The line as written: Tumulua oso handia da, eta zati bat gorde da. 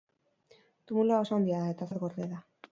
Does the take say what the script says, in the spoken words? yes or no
no